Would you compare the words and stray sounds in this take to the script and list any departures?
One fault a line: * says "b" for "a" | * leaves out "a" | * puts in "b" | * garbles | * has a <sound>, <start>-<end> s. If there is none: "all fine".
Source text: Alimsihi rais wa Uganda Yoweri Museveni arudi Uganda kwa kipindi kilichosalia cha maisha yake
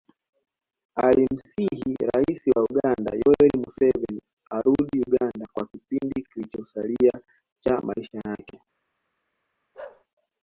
* has a bark, 9.7-10.0 s